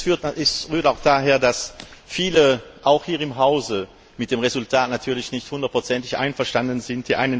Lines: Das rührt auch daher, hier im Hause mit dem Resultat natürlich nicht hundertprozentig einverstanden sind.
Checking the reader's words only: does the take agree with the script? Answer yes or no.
no